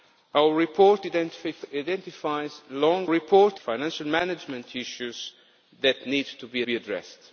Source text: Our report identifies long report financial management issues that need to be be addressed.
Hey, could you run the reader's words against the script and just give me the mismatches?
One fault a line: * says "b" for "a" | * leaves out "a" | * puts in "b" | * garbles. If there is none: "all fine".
all fine